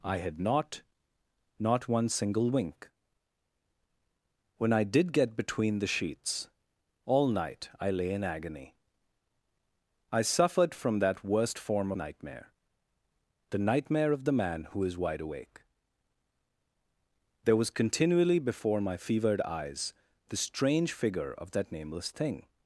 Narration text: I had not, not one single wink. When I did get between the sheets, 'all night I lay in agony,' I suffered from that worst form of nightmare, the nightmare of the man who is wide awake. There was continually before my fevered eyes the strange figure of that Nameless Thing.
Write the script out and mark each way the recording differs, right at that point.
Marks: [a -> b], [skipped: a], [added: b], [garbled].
I had not, not one single wink. When I did get between the sheets, 'all night I lay in agony,' I suffered from that worst form [skipped: of] nightmare, the nightmare of the man who is wide awake. There was continually before my fevered eyes the strange figure of that Nameless Thing.